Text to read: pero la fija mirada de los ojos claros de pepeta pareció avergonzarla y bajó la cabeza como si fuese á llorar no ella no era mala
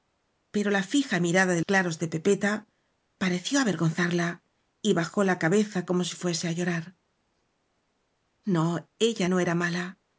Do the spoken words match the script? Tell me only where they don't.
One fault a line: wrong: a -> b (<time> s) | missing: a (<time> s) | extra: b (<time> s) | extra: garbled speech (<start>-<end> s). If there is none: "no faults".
missing: los ojos (1.6 s)